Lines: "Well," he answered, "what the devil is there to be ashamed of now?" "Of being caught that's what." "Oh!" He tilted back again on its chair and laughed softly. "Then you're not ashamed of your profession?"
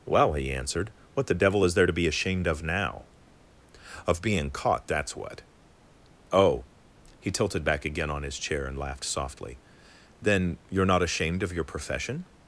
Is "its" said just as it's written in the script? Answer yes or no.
no